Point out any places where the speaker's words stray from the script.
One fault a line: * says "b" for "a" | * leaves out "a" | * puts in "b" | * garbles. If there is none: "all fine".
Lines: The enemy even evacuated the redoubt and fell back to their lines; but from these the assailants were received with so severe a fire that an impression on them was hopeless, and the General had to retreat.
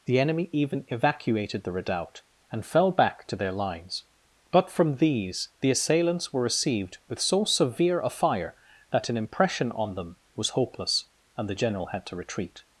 all fine